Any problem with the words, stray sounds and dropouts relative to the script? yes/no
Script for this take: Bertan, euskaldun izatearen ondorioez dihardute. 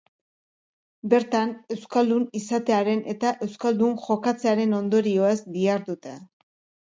yes